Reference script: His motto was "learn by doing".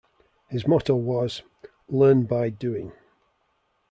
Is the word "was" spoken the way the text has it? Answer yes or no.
yes